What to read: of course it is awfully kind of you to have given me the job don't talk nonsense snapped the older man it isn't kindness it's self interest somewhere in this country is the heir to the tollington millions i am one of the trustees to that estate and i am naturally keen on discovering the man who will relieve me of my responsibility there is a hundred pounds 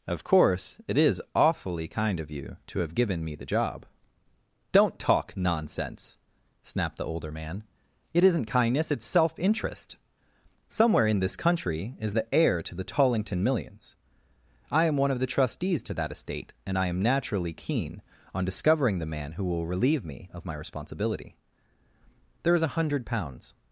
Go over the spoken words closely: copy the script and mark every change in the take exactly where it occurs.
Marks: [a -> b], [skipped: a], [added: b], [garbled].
of course it is awfully kind of you to have given me the job don't talk nonsense snapped the older man it isn't kindness it's self interest somewhere in this country is the heir to the tollington millions i am one of the trustees to that estate and i am naturally keen on discovering the man who will relieve me of my responsibility there is a hundred pounds